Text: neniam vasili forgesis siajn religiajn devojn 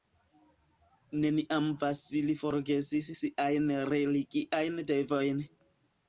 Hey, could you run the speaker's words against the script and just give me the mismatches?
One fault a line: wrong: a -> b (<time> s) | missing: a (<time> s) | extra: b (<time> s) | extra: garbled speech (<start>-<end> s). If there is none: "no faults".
no faults